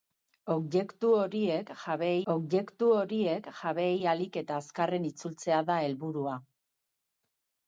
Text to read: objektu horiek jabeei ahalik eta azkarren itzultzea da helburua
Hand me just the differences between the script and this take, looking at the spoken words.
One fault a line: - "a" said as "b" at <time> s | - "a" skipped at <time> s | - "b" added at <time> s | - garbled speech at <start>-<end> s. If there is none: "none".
- "objektu horiek jabeei" added at 2.3 s